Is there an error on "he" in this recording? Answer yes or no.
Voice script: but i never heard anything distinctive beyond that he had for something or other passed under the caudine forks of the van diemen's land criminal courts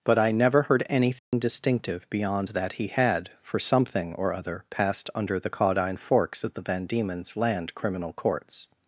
no